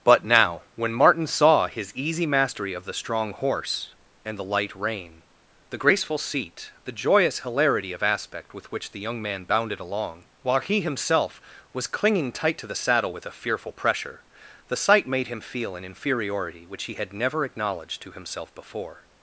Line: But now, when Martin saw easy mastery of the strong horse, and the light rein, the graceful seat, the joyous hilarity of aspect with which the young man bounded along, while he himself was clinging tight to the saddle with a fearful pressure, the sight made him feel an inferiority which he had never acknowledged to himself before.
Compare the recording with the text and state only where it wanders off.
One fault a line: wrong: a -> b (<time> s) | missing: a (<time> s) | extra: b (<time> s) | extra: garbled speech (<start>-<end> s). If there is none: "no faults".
extra: his (1.7 s)